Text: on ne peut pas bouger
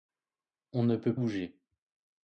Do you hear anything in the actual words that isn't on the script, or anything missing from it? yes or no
yes